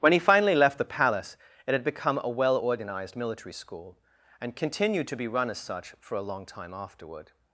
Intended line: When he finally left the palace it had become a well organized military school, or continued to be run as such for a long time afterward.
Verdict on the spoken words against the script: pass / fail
fail